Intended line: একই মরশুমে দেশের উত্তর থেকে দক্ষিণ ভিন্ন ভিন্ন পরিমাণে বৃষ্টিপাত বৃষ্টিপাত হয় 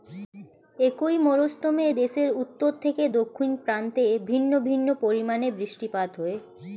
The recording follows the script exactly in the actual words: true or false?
false